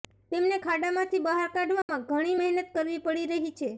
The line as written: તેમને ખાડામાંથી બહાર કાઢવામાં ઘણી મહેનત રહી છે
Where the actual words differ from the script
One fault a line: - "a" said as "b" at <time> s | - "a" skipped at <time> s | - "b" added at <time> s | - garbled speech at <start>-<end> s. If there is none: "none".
- "કરવી પડી" added at 2.7 s